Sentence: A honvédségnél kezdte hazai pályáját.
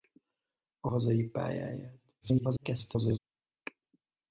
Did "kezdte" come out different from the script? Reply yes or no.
yes